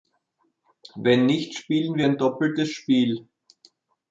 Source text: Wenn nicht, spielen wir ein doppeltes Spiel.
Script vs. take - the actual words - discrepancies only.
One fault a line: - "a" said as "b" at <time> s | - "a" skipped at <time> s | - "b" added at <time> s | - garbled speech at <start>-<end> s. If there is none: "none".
none